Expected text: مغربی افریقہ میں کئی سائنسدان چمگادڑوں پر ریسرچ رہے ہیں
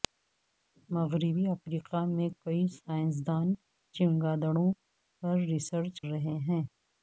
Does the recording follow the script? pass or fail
pass